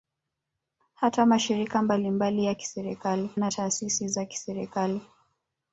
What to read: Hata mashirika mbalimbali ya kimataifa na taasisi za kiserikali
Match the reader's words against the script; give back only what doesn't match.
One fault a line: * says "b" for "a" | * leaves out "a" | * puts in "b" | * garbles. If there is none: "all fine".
* says "kiserikali" for "kimataifa"